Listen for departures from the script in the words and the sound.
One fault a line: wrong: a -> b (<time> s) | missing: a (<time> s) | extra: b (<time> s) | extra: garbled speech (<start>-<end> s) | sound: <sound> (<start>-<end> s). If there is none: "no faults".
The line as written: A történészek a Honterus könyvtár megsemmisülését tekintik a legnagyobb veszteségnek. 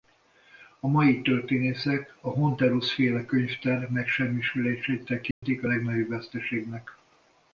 extra: mai (0.9 s)
extra: féle (2.9 s)
sound: dropout (5.3-5.4 s)